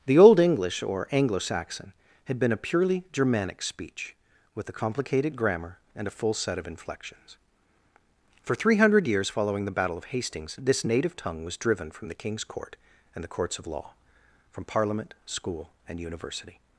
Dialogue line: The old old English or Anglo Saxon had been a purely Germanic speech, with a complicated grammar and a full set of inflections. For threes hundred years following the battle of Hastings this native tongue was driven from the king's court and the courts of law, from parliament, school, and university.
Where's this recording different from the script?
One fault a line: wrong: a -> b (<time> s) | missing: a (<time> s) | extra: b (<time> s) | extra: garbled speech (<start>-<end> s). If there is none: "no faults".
missing: old (0.4 s)
wrong: threes -> three (8.6 s)